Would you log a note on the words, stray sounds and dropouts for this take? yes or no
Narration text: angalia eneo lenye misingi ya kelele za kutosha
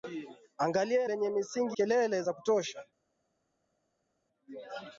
yes